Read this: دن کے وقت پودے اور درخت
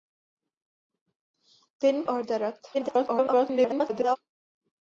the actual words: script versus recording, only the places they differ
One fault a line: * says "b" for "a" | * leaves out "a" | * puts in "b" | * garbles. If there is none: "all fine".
* leaves out "کے وقت پودے"
* garbles